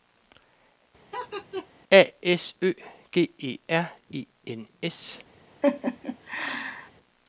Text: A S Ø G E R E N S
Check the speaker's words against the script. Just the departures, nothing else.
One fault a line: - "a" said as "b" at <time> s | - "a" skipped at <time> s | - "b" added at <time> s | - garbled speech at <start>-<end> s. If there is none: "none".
none